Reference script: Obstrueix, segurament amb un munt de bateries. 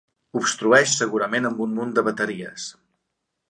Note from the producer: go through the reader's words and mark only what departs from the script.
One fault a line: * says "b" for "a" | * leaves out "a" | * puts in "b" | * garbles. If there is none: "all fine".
all fine